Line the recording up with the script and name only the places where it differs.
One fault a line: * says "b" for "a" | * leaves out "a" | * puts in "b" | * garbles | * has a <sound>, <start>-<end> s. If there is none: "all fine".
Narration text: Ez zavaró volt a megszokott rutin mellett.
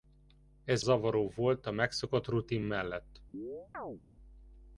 * has a chirp, 3.3-4.0 s